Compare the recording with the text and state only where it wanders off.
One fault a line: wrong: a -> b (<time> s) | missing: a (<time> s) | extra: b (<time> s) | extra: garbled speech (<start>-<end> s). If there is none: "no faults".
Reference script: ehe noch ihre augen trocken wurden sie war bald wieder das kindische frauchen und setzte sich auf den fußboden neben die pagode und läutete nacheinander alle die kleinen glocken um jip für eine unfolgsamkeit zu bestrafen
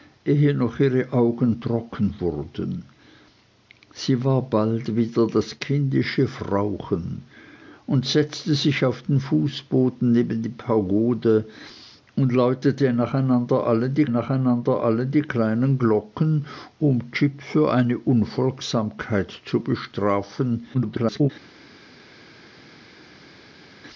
extra: nacheinander alle die (14.1 s)
extra: garbled speech (20.7-21.3 s)